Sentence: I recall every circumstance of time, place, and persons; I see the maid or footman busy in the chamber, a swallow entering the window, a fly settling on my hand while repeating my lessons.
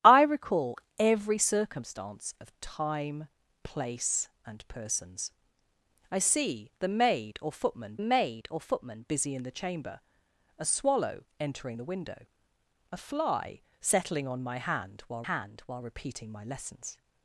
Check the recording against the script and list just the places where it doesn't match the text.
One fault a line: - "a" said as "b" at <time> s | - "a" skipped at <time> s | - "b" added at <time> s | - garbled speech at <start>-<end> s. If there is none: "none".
- "maid or footman" added at 8.0 s
- "hand while" added at 15.2 s